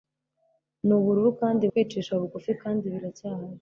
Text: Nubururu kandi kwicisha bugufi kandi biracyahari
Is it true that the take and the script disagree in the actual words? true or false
false